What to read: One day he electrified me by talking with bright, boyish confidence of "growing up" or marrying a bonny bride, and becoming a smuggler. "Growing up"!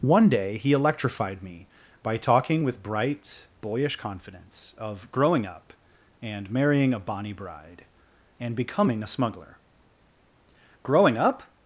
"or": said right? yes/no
no